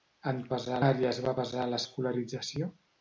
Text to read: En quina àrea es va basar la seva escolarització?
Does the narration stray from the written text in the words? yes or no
yes